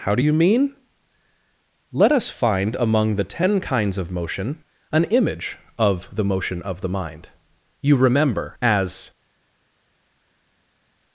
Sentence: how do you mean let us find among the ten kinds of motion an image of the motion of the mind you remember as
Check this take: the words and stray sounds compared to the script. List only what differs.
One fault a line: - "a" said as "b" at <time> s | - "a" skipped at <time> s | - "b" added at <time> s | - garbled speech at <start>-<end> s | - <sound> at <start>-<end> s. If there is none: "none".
none